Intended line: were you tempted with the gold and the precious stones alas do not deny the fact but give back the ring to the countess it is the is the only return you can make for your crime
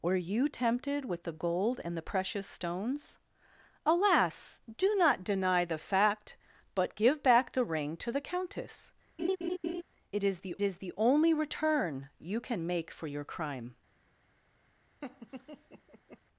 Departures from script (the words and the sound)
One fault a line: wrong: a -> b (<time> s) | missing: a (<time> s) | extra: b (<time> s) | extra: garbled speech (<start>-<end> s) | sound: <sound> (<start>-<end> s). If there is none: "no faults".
sound: laugh (9.2-9.8 s)
sound: laugh (15.0-16.2 s)